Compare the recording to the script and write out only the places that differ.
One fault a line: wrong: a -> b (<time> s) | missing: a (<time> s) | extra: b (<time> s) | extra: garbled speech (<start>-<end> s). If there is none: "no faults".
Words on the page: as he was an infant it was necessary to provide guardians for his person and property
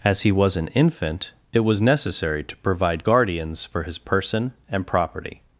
no faults